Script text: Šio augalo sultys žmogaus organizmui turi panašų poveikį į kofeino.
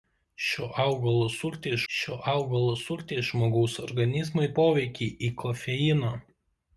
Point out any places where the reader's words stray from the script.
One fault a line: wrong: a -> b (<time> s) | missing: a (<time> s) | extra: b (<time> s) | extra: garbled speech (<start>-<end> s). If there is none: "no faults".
extra: šio augalo sultys (1.9 s)
missing: turi panašų (4.5 s)